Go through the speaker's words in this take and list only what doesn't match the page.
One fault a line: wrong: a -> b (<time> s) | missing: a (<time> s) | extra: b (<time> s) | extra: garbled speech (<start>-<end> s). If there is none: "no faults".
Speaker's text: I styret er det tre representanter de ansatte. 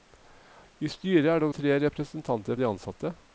no faults